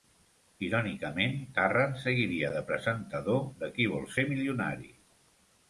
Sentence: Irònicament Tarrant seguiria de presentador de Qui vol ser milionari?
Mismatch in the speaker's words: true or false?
false